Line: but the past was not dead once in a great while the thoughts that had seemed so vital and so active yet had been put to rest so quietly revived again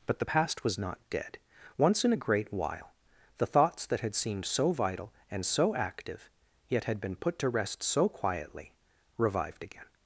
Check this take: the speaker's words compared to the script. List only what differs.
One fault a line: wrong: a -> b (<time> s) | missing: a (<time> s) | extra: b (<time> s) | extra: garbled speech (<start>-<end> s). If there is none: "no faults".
no faults